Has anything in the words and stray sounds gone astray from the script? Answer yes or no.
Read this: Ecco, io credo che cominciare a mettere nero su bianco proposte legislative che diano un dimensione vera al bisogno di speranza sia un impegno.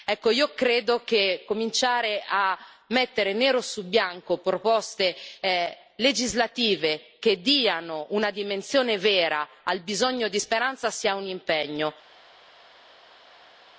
yes